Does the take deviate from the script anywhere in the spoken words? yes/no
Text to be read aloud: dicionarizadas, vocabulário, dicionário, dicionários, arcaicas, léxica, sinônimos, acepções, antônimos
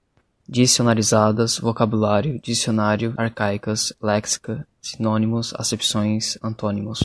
yes